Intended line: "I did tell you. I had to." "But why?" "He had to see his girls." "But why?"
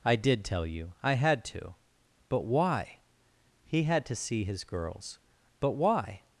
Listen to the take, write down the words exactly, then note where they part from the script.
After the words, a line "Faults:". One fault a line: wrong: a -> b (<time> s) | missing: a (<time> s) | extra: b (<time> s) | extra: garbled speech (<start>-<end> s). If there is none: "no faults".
"I did tell you. I had to." "But why?" "He had to see his girls." "But why?"
Faults:
no faults